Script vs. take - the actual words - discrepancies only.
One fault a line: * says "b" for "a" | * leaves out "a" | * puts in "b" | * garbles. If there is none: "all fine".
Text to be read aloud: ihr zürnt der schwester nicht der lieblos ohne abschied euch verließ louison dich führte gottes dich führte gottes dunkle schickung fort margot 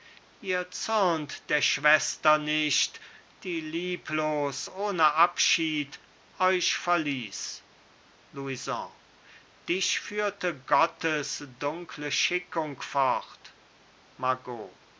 * says "die" for "der"
* leaves out "dich führte gottes"